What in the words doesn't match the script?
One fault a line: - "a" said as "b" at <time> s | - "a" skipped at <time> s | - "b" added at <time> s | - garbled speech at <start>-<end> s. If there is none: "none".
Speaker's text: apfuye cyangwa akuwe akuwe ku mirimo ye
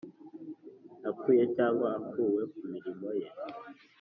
- "akuwe" skipped at 2.4 s